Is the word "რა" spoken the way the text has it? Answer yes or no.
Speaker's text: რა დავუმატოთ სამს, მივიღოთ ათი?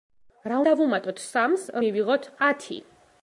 yes